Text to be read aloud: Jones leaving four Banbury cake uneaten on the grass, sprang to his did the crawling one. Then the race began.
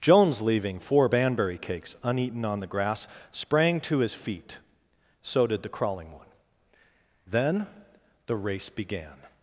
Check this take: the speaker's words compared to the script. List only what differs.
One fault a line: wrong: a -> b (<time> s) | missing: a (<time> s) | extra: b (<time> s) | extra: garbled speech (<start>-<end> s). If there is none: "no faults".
wrong: cake -> cakes (1.6 s)
extra: feet so (4.1 s)